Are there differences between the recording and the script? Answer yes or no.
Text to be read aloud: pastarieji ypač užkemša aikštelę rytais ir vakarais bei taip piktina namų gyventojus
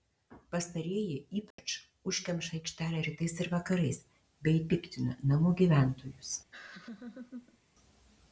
yes